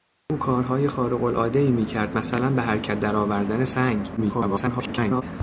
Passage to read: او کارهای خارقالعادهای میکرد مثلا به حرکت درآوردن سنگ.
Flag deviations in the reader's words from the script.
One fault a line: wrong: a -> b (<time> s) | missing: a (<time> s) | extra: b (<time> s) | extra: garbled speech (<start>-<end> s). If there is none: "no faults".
extra: garbled speech (4.2-5.2 s)